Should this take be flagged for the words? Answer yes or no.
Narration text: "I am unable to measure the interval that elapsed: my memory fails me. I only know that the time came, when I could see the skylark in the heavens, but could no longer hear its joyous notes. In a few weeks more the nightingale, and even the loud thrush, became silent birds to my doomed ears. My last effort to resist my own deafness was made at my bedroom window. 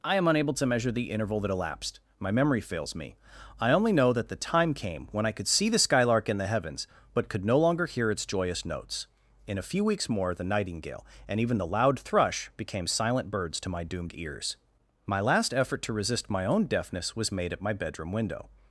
no